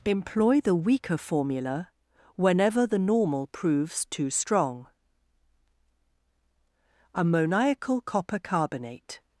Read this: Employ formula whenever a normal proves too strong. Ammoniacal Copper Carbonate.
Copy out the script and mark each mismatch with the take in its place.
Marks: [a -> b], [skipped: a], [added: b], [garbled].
Employ [added: the weaker] formula whenever [a -> the] normal proves too strong. Ammoniacal Copper Carbonate.